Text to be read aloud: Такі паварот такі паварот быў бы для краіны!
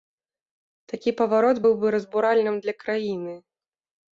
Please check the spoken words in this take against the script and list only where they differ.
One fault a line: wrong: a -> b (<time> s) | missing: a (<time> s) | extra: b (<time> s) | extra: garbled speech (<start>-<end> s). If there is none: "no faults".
missing: такі паварот (1.6 s)
extra: разбуральным (2.0 s)